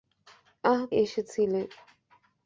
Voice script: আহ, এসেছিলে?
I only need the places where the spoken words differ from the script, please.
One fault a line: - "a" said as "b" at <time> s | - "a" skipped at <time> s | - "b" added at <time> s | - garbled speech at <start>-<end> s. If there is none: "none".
none